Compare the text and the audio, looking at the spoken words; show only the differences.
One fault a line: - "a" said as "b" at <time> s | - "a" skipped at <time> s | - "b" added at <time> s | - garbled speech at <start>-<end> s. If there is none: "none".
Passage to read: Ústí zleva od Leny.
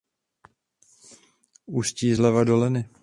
- "od" said as "do" at 2.4 s